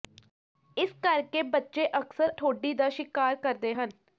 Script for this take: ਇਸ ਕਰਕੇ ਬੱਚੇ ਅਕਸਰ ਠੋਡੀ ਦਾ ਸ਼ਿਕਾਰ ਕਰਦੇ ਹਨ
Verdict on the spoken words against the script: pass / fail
pass